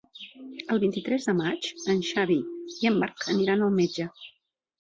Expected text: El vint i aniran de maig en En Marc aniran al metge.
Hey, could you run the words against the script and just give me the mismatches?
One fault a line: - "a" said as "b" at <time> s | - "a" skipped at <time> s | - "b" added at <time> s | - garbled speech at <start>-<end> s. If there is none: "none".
- "aniran" said as "tres" at 1.1 s
- "Xavi i" added at 2.1 s